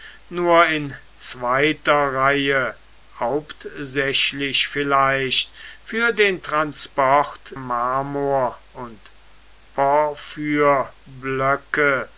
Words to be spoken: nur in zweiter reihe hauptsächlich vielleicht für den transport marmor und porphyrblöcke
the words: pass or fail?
pass